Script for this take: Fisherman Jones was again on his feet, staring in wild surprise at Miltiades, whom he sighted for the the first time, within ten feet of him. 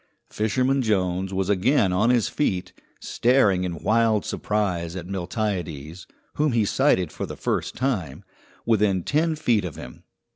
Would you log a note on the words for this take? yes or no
yes